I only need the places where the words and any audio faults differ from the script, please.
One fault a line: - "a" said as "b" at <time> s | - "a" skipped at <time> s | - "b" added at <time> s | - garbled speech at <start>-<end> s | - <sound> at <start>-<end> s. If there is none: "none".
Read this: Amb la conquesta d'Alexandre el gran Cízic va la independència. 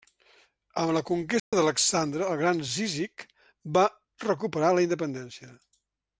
- dropout at 1.4-1.5 s
- "recuperar" added at 4.3 s